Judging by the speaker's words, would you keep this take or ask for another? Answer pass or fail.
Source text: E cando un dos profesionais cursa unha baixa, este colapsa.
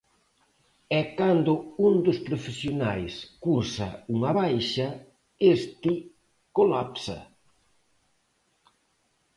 pass